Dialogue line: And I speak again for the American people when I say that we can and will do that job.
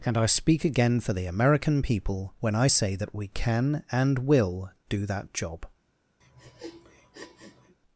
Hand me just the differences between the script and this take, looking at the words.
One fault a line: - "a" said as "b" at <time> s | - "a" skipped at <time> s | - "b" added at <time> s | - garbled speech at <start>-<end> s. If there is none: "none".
none